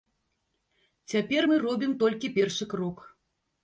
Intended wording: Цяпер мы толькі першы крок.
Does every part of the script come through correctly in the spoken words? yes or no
no